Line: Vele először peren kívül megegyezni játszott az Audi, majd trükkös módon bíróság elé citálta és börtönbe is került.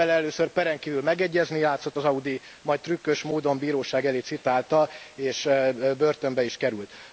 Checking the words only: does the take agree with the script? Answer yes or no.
yes